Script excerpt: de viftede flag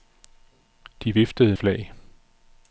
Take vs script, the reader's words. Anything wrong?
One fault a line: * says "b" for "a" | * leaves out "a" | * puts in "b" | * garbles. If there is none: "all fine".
all fine